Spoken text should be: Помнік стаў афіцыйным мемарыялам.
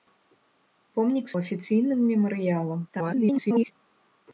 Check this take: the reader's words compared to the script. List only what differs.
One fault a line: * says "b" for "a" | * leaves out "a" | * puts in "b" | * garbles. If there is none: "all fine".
* leaves out "стаў"
* garbles